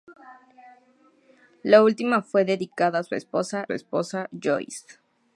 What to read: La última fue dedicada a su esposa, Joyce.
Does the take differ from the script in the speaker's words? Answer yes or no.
yes